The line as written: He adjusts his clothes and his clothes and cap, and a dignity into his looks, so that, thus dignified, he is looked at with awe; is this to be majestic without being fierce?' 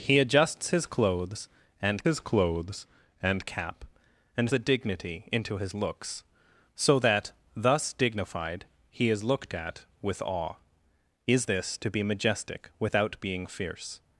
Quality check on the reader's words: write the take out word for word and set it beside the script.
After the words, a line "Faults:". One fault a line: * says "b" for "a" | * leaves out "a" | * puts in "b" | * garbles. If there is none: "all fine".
He adjusts his clothes and his clothes and cap, and a dignity into his looks, so that, thus dignified, he is looked at with awe; is this to be majestic without being fierce?'
Faults:
all fine